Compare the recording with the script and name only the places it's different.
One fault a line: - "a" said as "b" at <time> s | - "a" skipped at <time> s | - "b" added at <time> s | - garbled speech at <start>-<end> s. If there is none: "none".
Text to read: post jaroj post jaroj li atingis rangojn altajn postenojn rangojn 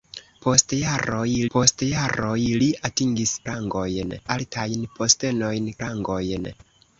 none